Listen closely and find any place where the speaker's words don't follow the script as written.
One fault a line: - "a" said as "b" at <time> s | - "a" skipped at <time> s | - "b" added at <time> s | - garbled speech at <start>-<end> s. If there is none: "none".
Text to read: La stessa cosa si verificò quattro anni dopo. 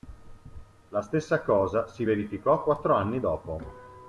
none